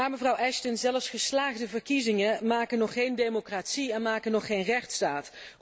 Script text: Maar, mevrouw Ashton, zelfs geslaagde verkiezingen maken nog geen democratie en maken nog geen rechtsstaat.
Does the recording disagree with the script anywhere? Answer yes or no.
no